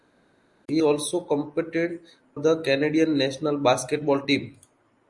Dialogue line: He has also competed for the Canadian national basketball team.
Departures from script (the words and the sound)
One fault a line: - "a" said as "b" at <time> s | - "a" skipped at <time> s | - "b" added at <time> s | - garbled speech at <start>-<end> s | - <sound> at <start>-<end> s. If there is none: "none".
- "has" skipped at 0.8 s
- "for" skipped at 2.0 s